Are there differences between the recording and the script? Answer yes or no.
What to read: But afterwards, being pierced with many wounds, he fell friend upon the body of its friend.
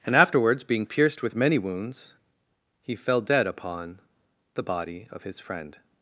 yes